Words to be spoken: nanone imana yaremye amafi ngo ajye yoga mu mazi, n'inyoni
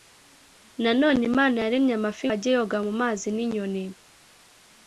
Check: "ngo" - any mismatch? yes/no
yes